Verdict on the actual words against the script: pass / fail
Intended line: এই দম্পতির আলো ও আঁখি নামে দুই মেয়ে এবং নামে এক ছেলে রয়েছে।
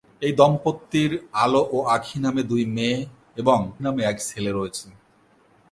pass